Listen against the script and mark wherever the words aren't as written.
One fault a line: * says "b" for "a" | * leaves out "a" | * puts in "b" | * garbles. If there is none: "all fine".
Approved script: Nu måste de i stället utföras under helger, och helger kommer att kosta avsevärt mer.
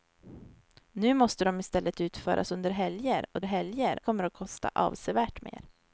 all fine